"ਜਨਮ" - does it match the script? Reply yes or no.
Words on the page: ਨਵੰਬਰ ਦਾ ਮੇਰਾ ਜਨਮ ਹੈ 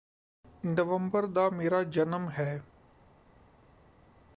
yes